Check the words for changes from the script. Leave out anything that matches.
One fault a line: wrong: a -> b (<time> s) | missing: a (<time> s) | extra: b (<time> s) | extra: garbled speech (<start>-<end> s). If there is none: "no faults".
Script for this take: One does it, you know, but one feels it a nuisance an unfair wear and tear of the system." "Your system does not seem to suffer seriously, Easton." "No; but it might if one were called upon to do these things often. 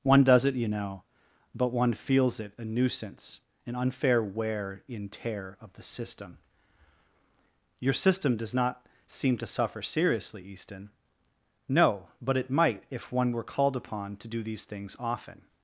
wrong: and -> in (4.9 s)